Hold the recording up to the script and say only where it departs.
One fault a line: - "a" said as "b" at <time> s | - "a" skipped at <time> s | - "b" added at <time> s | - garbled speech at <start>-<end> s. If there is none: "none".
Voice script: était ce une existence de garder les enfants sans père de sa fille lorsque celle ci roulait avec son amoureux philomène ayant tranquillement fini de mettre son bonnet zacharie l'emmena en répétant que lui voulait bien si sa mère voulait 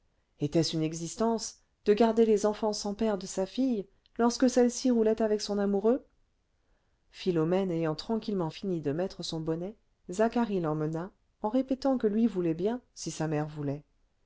none